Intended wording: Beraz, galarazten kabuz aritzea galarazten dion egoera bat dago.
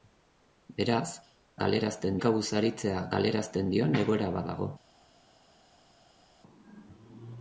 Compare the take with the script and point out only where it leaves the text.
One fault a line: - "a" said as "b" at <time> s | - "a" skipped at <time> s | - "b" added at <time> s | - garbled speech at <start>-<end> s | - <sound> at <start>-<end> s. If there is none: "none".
none